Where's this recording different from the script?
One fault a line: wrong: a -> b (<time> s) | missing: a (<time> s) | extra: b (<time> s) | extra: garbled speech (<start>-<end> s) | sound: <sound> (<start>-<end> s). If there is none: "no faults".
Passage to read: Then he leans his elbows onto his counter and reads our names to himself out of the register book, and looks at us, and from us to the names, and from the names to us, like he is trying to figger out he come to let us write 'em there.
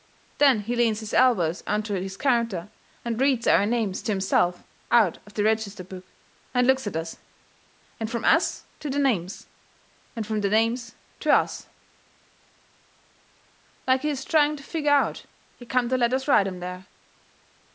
no faults